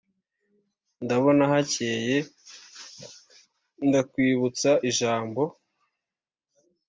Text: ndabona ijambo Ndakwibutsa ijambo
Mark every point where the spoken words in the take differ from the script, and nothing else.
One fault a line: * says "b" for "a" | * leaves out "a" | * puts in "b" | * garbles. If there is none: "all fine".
* says "hakeye" for "ijambo"